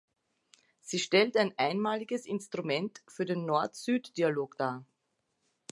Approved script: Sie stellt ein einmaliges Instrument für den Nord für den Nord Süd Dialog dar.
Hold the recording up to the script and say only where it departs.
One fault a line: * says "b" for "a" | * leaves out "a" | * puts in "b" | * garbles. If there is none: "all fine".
* leaves out "für den Nord"